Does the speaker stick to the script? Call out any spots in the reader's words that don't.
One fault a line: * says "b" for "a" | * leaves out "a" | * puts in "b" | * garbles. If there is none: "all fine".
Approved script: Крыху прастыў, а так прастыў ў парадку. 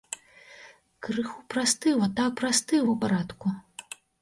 all fine